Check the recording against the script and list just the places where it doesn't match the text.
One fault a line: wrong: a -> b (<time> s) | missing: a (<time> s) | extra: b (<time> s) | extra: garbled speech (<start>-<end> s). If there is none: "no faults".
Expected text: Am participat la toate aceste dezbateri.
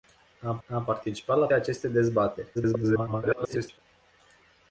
extra: am (0.7 s)
missing: toate (1.5 s)
extra: garbled speech (2.5-3.8 s)